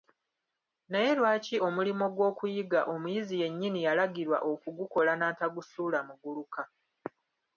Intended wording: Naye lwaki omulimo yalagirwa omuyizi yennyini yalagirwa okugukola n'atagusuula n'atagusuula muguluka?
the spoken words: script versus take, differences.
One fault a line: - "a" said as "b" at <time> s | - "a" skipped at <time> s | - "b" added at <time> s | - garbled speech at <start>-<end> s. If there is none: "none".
- "yalagirwa" said as "gw'okuyiga" at 2.1 s
- "n'atagusuula" skipped at 6.0 s